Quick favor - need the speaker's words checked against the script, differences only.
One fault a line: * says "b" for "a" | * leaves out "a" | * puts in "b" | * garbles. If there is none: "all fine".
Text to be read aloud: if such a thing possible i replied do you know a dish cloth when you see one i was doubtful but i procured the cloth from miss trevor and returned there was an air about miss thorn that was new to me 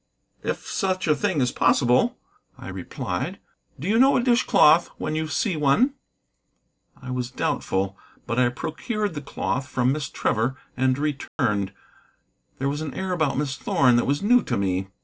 * puts in "is"